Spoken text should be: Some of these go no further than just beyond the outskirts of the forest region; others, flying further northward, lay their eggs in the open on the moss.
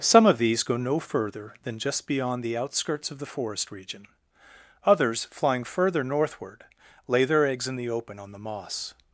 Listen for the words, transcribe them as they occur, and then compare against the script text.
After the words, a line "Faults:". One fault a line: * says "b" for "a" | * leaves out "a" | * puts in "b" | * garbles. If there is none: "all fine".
Some of these go no further than just beyond the outskirts of the forest region; others, flying further northward, lay their eggs in the open on the moss.
Faults:
all fine